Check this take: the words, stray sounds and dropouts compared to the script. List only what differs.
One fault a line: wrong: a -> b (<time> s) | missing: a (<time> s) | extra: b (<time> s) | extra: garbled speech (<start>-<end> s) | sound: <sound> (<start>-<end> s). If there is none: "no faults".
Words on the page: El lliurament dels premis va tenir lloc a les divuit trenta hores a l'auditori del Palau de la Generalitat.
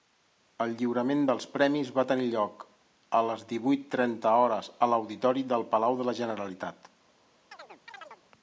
sound: chirp (7.5-8.2 s)